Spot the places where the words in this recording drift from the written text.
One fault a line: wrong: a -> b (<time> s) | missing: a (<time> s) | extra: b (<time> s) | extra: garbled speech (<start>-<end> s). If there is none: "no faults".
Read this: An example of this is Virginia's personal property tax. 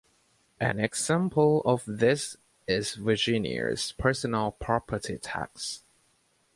no faults